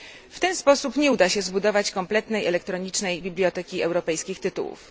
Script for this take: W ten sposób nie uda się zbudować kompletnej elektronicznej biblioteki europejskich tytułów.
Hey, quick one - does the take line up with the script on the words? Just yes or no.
yes